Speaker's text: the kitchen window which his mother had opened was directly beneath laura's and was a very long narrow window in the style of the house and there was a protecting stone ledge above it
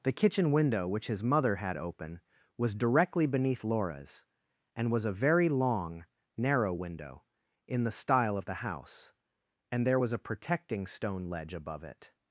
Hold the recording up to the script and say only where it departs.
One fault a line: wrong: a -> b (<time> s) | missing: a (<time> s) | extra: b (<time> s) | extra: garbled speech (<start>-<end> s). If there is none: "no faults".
wrong: opened -> open (1.8 s)